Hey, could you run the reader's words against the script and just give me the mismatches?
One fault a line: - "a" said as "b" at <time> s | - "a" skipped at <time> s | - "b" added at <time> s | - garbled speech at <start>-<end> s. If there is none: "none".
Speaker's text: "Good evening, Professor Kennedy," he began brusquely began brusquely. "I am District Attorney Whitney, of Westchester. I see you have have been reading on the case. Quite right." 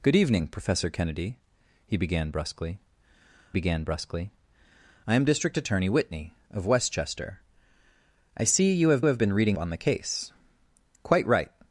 none